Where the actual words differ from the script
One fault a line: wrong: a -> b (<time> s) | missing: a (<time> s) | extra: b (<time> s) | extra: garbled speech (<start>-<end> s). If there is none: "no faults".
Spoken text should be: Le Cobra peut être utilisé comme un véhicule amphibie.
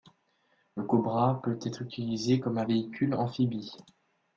no faults